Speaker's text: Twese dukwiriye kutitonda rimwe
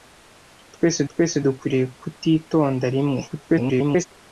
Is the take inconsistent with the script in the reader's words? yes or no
yes